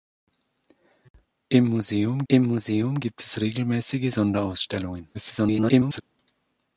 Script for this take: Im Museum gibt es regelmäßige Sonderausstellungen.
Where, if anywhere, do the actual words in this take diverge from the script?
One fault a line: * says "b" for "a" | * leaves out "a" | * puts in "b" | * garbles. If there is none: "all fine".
* puts in "im Museum"
* garbles